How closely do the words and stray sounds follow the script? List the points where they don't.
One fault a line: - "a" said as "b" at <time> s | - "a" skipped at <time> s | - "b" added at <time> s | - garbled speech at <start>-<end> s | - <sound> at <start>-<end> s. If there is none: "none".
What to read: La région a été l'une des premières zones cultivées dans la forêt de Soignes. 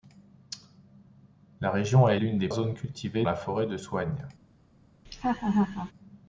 - "été" skipped at 2.1 s
- "premières" skipped at 2.5 s
- "dans" skipped at 3.3 s
- laugh at 5.0-5.9 s